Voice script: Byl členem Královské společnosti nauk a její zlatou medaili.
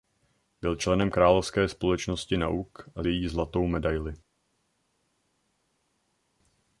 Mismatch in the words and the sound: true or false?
false